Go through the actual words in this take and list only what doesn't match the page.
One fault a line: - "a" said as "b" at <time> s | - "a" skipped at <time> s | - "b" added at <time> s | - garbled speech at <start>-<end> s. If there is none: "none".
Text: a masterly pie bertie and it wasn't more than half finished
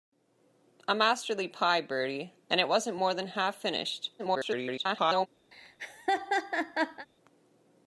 - garbled speech at 4.2-5.3 s